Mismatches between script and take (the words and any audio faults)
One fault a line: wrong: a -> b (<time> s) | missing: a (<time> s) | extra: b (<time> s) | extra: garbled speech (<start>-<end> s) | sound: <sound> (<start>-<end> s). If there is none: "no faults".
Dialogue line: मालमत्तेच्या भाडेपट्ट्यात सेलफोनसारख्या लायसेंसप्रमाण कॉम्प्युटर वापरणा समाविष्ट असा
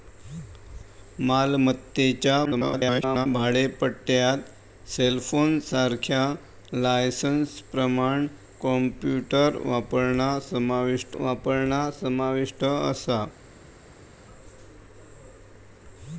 extra: garbled speech (2.4-3.3 s)
extra: वापरणा समाविष्ट (11.2 s)